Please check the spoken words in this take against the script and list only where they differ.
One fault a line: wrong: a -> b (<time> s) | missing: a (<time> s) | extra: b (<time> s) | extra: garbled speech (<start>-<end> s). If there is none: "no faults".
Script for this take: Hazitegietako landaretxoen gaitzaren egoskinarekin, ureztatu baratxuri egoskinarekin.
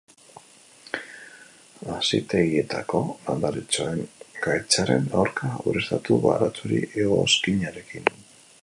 wrong: egoskinarekin -> aurka (5.2 s)